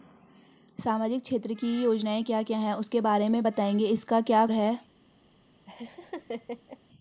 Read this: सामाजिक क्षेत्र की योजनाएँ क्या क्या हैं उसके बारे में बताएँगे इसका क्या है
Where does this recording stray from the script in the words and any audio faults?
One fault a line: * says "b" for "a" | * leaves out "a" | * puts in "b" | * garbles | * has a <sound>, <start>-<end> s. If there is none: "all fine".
* has a laugh, 5.7-6.8 s